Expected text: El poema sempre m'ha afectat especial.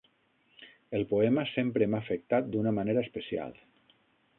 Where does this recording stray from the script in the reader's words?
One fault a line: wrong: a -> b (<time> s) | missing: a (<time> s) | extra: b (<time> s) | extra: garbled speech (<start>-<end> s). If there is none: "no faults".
extra: d'una manera (2.5 s)